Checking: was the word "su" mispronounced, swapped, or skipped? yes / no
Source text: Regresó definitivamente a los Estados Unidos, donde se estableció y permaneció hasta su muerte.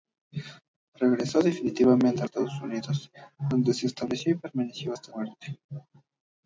yes